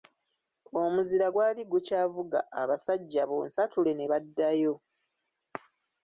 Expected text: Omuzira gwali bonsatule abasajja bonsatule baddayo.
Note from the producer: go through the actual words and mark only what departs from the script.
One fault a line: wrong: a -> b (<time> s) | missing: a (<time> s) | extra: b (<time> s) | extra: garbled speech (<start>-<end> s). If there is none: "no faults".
wrong: bonsatule -> gukyavuga (1.7 s)
extra: ne (3.9 s)